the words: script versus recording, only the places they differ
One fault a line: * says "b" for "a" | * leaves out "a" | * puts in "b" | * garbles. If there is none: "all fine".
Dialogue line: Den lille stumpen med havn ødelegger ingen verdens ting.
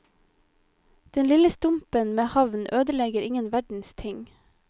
all fine